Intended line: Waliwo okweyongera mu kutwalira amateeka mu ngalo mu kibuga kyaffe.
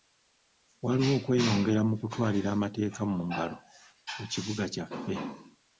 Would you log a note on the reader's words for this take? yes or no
no